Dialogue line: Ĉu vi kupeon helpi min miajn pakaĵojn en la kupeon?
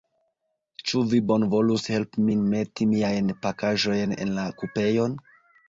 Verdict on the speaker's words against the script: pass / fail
fail